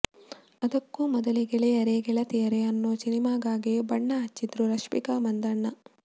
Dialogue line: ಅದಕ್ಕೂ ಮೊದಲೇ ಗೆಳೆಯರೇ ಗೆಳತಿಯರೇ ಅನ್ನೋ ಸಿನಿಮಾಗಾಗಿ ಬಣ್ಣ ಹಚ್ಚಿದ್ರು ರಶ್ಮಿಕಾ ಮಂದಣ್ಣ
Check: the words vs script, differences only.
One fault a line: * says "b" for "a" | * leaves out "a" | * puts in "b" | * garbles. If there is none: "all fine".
all fine